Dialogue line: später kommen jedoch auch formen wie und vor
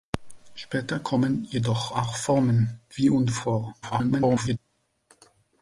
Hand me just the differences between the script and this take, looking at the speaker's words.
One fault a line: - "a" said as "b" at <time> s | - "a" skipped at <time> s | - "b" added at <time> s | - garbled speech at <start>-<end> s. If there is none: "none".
- garbled speech at 3.8-4.6 s